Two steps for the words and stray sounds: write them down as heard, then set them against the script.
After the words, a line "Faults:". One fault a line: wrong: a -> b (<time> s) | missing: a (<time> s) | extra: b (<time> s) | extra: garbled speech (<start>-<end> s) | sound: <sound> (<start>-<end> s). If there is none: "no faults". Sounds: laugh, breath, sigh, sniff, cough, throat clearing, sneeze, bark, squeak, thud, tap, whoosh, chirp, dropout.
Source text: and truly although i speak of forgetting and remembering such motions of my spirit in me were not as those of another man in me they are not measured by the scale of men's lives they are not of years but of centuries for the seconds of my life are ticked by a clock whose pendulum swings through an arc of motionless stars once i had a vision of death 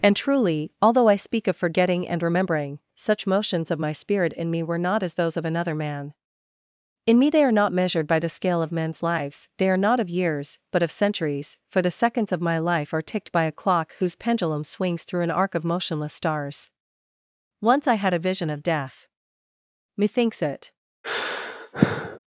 and truly although i speak of forgetting and remembering such motions of my spirit in me were not as those of another man in me they are not measured by the scale of men's lives they are not of years but of centuries for the seconds of my life are ticked by a clock whose pendulum swings through an arc of motionless stars once i had a vision of death methinks it
Faults:
extra: methinks it (19.9 s)
sound: sigh (21.0-22.2 s)